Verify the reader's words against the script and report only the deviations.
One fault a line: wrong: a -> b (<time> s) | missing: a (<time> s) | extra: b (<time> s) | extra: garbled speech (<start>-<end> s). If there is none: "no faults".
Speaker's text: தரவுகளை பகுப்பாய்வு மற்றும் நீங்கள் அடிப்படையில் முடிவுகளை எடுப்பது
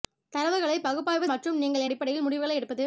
no faults